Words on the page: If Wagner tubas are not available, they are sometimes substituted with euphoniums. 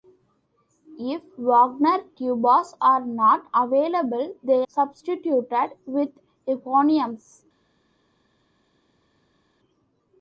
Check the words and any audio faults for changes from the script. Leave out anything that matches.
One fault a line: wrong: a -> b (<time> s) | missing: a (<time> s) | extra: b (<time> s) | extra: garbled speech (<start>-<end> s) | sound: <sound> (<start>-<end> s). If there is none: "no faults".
missing: are sometimes (4.7 s)